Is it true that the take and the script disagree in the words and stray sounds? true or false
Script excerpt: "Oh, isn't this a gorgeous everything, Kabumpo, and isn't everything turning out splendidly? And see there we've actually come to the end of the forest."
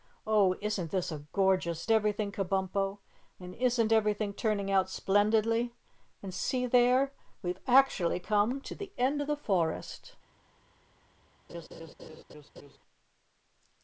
true